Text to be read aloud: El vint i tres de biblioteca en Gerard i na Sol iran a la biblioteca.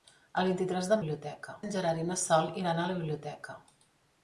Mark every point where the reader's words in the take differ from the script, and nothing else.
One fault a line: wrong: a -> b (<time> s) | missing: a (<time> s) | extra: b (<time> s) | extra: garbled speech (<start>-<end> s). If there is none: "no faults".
no faults